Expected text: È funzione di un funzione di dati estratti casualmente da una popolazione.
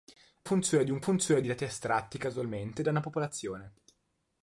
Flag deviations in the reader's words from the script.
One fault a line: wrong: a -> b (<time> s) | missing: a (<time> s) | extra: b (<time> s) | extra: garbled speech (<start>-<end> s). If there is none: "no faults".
no faults